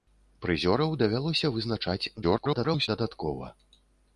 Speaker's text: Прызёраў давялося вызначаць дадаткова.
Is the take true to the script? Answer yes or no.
no